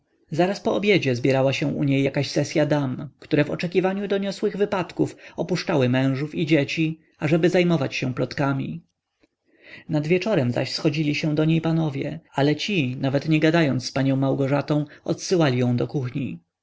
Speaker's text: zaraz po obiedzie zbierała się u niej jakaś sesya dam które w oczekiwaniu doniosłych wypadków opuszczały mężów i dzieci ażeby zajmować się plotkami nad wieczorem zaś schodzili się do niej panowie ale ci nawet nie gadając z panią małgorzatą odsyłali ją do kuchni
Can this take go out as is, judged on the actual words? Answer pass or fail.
pass